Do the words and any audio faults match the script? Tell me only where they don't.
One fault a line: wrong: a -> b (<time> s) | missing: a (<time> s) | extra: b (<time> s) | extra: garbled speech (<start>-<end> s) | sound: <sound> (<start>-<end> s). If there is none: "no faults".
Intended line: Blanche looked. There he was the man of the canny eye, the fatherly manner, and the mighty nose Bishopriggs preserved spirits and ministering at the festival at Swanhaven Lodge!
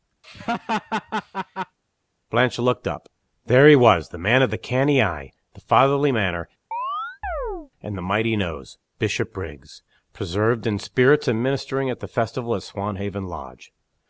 sound: laugh (0.2-1.8 s)
extra: up (2.9 s)
sound: chirp (6.7-7.7 s)
extra: in (10.7 s)